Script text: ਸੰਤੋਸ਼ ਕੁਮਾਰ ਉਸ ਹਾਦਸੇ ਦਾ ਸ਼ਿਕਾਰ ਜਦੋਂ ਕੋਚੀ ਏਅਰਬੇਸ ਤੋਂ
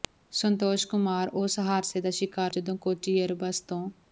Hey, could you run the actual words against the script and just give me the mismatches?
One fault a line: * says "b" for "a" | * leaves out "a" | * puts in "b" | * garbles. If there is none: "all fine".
all fine